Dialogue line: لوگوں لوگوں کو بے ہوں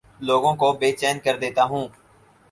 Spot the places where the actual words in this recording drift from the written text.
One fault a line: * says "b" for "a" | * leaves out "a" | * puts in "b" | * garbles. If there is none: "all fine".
* leaves out "لوگوں"
* puts in "چین کر دیتا"